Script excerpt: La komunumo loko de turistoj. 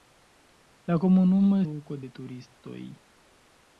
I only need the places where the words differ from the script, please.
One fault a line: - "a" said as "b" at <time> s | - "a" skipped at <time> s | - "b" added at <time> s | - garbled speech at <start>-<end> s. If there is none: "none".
none